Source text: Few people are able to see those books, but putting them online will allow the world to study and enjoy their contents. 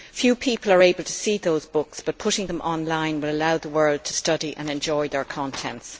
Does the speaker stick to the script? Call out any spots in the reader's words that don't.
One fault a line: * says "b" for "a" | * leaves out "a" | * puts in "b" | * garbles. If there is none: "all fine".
all fine